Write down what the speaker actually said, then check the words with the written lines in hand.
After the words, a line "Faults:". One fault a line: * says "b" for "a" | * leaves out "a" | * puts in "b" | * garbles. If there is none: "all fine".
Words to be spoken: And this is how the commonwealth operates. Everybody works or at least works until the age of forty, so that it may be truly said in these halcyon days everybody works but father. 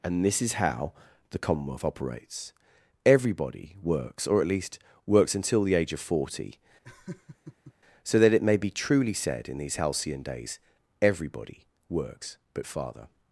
And this is how the commonwealth operates. Everybody works or at least works until the age of forty, so that it may be truly said in these halcyon days everybody works but father.
Faults:
all fine